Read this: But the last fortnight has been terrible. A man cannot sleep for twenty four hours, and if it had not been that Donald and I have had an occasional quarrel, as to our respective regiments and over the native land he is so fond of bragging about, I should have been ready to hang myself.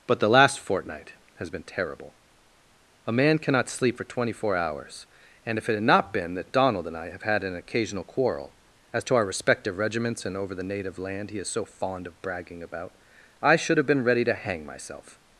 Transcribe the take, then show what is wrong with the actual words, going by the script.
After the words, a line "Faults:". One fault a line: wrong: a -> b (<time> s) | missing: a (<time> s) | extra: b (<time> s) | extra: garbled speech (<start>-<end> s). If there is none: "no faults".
But the last fortnight has been terrible. A man cannot sleep for twenty four hours, and if it had not been that Donald and I have had an occasional quarrel, as to our respective regiments and over the native land he is so fond of bragging about, I should have been ready to hang myself.
Faults:
no faults